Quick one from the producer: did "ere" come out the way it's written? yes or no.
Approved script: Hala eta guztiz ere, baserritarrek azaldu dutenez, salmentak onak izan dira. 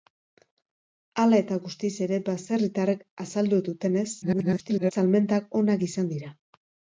yes